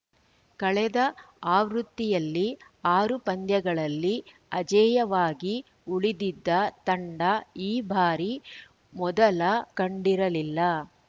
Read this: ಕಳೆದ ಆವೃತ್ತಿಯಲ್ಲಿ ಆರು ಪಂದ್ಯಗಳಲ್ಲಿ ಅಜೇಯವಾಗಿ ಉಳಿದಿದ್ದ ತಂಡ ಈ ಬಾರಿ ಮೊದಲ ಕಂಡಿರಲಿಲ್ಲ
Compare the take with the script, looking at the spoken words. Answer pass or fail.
pass